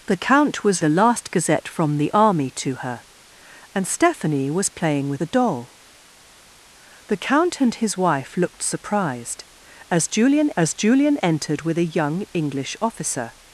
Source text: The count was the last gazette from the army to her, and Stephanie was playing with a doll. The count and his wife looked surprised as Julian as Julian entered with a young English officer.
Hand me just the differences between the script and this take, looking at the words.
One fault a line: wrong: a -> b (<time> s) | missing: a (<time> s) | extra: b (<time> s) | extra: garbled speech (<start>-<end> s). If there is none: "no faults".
no faults